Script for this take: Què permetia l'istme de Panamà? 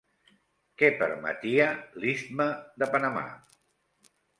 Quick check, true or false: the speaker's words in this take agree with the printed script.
true